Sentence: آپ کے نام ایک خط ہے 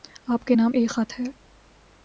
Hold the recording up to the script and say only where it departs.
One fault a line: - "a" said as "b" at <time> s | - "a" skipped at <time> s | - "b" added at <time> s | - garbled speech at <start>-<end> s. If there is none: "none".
none